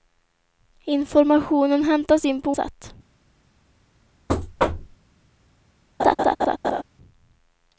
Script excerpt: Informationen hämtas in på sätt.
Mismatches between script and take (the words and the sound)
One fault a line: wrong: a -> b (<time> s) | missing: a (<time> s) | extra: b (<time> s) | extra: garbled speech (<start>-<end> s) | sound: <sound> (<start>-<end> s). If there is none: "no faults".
sound: thud (4.3-5.0 s)
sound: laugh (6.0-6.8 s)